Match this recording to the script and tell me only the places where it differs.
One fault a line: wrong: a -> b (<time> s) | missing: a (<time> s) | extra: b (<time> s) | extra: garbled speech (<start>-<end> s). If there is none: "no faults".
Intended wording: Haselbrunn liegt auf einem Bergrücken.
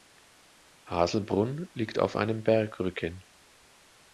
no faults